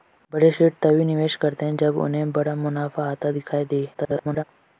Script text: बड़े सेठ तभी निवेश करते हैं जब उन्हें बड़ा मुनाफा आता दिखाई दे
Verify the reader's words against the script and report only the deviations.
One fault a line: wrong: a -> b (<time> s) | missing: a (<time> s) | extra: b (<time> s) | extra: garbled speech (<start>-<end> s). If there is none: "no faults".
extra: garbled speech (3.9-4.4 s)